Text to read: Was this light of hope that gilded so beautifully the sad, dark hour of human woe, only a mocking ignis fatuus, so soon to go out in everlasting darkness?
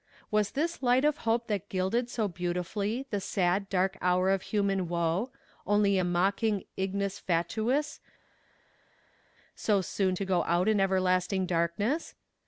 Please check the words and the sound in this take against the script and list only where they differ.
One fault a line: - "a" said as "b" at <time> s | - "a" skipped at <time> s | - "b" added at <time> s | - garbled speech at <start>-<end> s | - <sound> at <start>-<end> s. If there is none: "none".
none